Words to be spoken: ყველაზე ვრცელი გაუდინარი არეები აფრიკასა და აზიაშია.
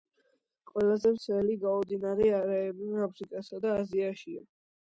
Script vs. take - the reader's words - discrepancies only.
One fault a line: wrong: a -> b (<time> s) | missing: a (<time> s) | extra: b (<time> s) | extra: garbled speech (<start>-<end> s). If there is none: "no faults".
no faults